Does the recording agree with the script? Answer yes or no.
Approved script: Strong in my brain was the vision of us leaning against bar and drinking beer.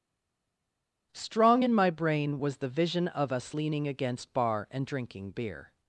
yes